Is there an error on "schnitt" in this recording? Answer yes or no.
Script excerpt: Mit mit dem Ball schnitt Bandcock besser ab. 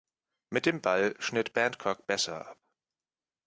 no